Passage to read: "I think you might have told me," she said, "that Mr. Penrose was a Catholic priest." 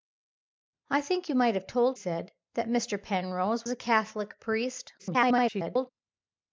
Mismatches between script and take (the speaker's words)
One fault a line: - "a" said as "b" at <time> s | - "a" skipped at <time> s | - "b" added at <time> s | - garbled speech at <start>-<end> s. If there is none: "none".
- "me she" skipped at 2.0 s
- "was" skipped at 3.7 s
- garbled speech at 5.0-5.9 s